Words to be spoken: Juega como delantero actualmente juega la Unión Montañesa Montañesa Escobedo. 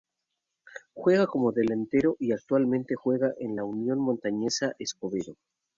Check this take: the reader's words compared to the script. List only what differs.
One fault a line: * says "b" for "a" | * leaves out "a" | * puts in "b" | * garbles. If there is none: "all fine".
* puts in "y"
* puts in "en"
* leaves out "Montañesa"